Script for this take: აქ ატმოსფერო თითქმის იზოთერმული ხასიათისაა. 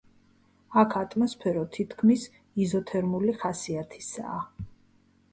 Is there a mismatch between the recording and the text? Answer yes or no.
no